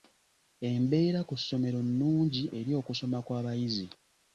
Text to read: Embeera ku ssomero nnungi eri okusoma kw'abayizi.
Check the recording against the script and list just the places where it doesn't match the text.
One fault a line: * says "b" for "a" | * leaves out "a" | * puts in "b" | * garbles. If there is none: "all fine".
all fine